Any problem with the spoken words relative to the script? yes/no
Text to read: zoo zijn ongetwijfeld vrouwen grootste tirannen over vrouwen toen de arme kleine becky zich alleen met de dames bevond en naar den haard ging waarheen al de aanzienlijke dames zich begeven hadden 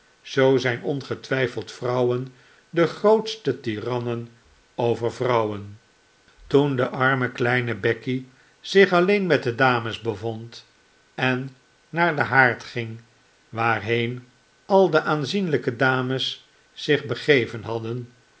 yes